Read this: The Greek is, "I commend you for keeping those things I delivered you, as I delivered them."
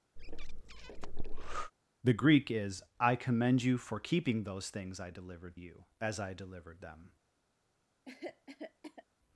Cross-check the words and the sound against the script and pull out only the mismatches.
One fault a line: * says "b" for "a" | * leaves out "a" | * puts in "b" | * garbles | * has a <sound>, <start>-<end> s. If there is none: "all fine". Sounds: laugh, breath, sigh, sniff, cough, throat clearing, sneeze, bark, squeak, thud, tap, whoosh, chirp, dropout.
* has a breath, 0.2-1.7 s
* has a cough, 8.1-9.1 s